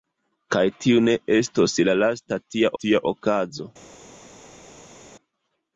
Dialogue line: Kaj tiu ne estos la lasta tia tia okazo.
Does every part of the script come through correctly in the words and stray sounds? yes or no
yes